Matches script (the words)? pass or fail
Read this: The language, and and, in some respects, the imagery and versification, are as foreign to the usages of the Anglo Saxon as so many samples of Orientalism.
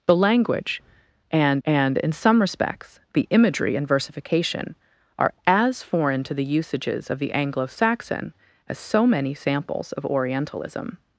pass